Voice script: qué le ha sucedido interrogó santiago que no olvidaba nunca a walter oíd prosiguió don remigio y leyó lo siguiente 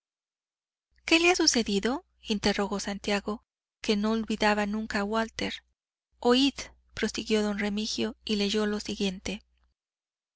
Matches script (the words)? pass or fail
pass